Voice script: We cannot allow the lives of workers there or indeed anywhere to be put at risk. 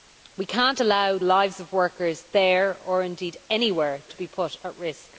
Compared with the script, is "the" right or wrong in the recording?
wrong